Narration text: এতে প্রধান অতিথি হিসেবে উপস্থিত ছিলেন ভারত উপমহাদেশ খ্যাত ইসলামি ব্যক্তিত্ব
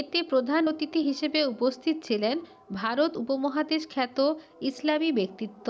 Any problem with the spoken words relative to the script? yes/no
no